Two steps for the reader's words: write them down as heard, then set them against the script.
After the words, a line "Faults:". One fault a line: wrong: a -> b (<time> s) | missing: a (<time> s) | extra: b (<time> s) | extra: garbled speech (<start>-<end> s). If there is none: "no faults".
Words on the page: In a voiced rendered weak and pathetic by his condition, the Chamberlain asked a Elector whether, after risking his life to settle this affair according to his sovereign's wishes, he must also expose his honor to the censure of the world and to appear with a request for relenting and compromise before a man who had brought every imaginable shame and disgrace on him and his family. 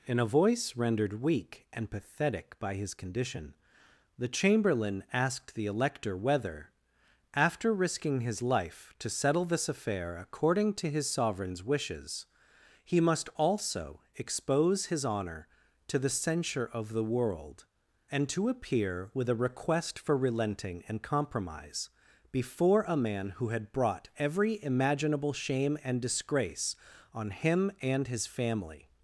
In a voice rendered weak and pathetic by his condition, the Chamberlain asked the Elector whether, after risking his life to settle this affair according to his sovereign's wishes, he must also expose his honor to the censure of the world and to appear with a request for relenting and compromise before a man who had brought every imaginable shame and disgrace on him and his family.
Faults:
wrong: voiced -> voice (0.2 s)
wrong: a -> the (5.5 s)